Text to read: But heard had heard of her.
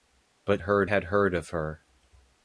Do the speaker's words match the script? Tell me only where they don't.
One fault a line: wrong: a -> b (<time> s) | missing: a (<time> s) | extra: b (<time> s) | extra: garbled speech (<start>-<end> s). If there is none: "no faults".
no faults